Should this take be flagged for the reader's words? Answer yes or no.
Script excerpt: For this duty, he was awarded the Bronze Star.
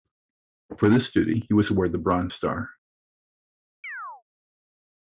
no